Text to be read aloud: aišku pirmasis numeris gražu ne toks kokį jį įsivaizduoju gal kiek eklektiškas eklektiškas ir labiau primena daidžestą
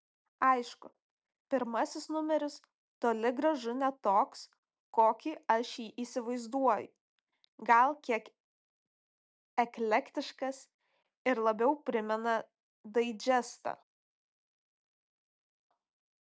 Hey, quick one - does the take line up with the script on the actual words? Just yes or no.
no